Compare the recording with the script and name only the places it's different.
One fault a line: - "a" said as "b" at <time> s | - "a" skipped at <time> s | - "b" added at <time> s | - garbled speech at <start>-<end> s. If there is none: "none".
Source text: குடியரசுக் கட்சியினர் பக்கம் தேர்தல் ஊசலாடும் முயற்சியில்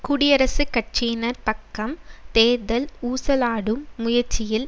none